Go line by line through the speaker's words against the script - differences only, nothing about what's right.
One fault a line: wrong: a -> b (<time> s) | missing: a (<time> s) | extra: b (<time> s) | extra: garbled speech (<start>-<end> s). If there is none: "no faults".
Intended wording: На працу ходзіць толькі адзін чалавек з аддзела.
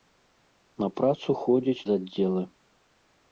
missing: толькі адзін чалавек (1.9 s)